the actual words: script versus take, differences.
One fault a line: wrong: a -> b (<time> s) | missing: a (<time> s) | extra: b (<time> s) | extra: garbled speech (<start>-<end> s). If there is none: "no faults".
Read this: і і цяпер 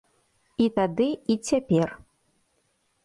extra: тады (0.8 s)